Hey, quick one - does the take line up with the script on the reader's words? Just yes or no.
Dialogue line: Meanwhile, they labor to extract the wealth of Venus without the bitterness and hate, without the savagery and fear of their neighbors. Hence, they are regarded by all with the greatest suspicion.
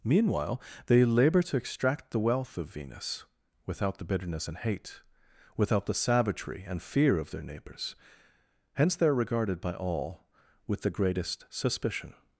yes